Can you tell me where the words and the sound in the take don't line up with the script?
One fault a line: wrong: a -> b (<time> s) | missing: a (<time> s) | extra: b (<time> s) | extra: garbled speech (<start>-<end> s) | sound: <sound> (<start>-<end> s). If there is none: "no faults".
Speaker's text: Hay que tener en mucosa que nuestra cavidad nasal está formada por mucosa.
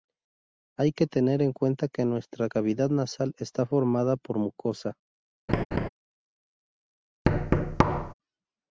wrong: mucosa -> cuenta (1.5 s)
sound: laugh (5.5-5.9 s)
sound: thud (7.3-8.1 s)